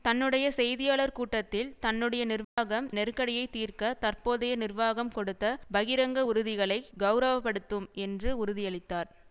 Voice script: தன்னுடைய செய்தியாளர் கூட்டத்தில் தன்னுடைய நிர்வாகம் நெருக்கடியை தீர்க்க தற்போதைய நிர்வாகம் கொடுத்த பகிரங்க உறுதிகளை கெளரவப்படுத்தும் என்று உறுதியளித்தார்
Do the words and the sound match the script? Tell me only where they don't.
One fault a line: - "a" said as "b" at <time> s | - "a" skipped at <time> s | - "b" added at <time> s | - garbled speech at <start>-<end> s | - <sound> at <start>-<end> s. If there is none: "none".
- dropout at 2.4-2.6 s